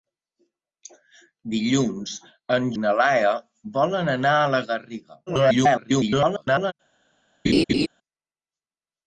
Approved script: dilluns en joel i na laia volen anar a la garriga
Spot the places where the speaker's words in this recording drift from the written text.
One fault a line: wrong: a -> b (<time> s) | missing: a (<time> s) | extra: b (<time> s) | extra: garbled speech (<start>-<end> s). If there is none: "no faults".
missing: joel (2.7 s)
extra: garbled speech (5.3-6.7 s)